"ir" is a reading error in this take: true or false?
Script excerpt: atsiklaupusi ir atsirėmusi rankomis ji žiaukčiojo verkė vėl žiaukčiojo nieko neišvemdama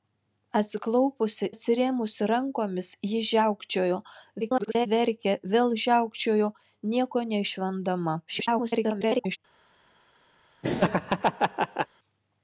true